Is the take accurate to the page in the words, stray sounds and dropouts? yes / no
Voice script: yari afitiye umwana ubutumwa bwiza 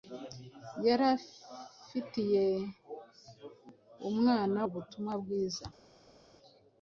yes